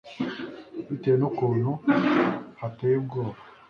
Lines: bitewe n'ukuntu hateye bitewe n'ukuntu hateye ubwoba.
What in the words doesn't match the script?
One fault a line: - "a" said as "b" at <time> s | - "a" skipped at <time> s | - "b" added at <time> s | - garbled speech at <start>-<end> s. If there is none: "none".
- "bitewe n'ukuntu hateye" skipped at 3.0 s